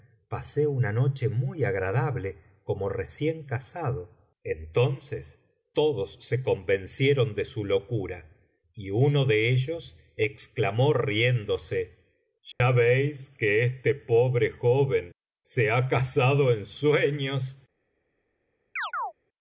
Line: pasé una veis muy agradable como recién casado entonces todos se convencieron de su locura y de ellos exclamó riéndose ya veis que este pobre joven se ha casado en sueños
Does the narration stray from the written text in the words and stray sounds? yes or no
yes